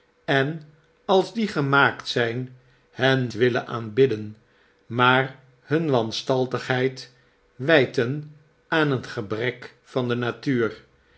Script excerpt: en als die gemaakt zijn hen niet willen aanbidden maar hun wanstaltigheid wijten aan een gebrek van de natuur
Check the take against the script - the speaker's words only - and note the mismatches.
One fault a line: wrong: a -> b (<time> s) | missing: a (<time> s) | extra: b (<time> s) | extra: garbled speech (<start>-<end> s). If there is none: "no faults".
missing: niet (3.3 s)